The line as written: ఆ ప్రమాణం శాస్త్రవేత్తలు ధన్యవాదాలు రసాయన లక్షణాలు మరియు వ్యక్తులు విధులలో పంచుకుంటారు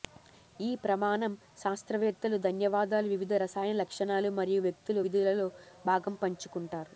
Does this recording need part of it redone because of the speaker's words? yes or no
yes